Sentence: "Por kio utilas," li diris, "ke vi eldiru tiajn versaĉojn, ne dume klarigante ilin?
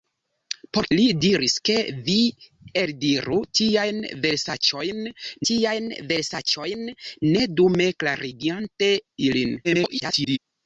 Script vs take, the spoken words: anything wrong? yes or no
yes